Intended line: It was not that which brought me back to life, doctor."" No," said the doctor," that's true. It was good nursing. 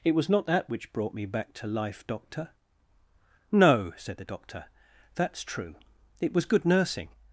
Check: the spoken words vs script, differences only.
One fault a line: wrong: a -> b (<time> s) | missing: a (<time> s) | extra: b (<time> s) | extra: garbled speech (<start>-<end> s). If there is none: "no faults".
no faults